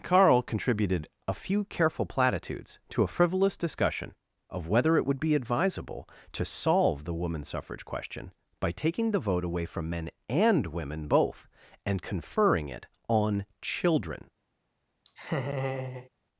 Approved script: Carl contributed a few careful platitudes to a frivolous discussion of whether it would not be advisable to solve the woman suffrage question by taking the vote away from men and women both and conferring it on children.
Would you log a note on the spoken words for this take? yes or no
yes